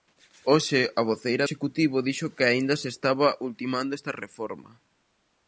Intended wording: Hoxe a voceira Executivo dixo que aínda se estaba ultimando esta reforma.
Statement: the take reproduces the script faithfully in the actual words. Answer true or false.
true